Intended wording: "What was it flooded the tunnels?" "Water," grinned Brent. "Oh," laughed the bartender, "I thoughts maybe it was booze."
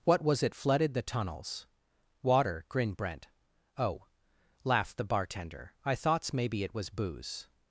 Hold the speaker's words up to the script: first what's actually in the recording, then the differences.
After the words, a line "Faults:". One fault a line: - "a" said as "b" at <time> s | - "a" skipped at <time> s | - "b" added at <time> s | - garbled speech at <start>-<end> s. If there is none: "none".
"What was it flooded the tunnels?" "Water," grinned Brent. "Oh," laughed the bartender, "I thoughts maybe it was booze."
Faults:
none